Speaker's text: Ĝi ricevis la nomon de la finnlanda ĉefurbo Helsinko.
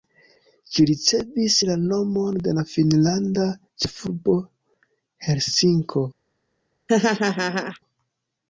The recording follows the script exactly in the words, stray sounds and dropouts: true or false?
false